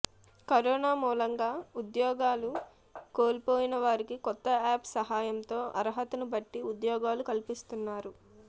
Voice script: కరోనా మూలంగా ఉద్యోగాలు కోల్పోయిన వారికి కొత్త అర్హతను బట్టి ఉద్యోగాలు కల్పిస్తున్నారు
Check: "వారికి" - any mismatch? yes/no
no